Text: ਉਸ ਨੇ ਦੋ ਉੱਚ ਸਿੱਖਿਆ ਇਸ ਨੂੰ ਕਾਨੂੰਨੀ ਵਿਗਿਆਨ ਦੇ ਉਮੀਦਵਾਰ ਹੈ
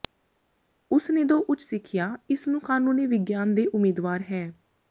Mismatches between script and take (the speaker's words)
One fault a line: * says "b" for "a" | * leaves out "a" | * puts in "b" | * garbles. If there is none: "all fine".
all fine